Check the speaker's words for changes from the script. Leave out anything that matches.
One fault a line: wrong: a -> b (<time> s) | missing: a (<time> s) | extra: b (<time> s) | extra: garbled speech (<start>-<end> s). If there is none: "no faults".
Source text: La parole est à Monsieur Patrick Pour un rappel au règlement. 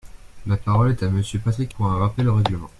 no faults